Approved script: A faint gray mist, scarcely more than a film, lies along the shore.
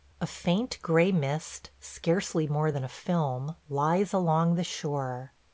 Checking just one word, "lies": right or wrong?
right